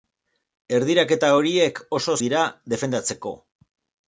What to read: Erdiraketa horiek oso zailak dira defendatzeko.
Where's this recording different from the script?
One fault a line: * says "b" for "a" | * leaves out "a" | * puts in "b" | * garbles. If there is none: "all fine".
* leaves out "zailak"